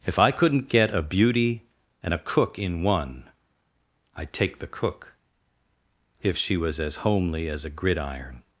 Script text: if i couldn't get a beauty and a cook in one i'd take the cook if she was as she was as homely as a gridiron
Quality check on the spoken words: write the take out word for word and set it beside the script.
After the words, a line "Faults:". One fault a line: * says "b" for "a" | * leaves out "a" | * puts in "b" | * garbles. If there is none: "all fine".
if i couldn't get a beauty and a cook in one i'd take the cook if she was as homely as a gridiron
Faults:
* leaves out "she was as"